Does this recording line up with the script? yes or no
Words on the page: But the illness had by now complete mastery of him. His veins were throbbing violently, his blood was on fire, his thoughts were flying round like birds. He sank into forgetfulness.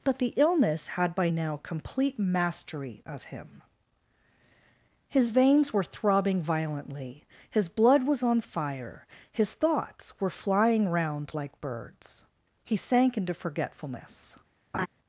yes